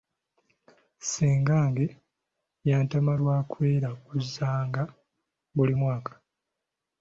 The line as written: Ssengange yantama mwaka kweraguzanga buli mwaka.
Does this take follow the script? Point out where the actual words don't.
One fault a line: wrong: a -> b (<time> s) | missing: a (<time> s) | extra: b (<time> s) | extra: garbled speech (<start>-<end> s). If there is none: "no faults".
wrong: mwaka -> lwa (3.2 s)